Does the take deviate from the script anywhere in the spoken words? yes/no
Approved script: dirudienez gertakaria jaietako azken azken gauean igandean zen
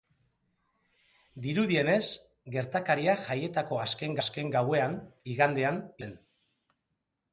no